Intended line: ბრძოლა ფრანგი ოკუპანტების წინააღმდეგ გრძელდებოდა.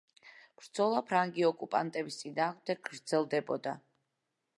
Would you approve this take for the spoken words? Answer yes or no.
yes